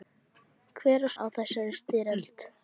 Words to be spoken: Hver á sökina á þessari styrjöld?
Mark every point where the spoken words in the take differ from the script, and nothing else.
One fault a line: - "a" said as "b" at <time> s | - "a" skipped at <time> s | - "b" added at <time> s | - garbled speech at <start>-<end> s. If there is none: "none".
- "sökina" skipped at 1.1 s